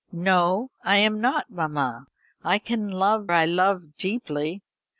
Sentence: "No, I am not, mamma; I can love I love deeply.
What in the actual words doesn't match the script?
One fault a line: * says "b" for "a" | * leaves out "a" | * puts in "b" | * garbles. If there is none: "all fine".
all fine